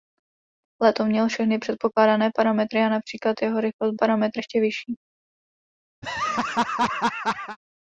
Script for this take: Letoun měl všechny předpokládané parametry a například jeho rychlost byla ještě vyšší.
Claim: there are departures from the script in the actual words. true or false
true